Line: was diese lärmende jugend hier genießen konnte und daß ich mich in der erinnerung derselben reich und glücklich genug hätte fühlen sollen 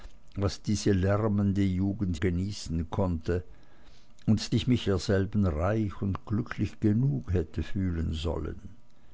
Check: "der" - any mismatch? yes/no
yes